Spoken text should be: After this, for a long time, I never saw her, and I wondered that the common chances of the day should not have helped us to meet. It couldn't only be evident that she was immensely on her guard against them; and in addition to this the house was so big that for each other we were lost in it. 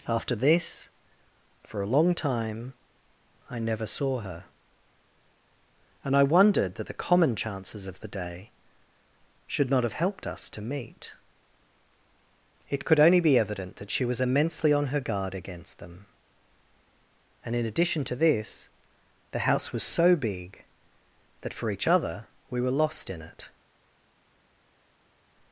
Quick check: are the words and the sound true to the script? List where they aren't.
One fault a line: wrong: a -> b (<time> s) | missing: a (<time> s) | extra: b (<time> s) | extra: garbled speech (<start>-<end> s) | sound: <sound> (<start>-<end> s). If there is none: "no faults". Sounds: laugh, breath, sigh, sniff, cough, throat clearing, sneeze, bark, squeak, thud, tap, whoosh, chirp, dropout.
wrong: couldn't -> could (12.8 s)